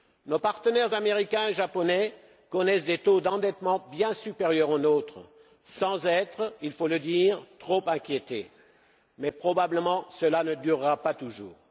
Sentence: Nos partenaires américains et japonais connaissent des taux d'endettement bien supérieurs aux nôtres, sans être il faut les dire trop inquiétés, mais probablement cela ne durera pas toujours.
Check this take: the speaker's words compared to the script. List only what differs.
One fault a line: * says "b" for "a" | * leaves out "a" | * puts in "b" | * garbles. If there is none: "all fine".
* says "le" for "les"